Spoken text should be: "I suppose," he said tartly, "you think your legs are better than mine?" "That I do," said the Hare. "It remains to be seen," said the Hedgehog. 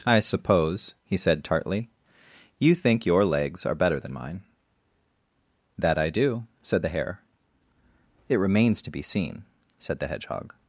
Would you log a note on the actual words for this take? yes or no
no